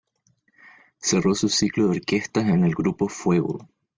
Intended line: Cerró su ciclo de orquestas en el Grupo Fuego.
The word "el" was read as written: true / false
true